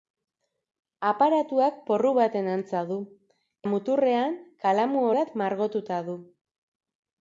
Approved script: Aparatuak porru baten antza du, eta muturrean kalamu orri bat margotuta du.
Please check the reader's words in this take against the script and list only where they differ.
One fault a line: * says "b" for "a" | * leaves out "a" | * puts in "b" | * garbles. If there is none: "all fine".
* leaves out "eta"
* leaves out "orri"